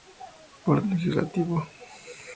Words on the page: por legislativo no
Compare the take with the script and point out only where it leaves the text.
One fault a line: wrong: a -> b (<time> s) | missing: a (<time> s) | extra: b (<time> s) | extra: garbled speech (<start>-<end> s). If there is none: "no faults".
no faults